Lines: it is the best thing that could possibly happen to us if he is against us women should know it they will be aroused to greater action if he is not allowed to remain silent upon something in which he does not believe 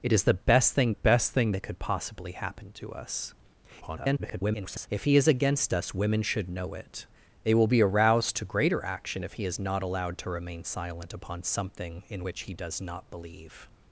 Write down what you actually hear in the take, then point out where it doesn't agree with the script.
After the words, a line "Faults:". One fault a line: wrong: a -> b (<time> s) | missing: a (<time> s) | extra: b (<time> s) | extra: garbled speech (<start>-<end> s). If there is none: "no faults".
it is the best thing best thing that could possibly happen to us [garbled] if he is against us women should know it they will be aroused to greater action if he is not allowed to remain silent upon something in which he does not believe
Faults:
extra: best thing (0.9 s)
extra: garbled speech (3.8-4.9 s)